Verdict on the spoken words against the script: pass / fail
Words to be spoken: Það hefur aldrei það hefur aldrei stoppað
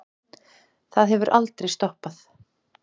fail